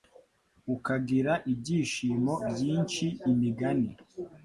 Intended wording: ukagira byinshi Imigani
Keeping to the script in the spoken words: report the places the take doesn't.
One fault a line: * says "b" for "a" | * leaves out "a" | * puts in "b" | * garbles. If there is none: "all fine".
* puts in "ibyishimo"